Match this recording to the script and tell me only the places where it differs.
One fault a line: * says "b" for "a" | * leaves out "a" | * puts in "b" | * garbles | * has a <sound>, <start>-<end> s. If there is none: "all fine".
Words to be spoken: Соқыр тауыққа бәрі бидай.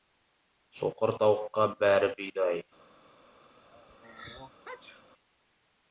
* has a sneeze, 3.7-5.1 s